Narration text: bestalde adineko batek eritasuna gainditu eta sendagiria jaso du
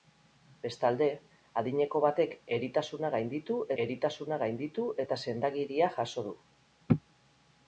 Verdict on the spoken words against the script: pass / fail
fail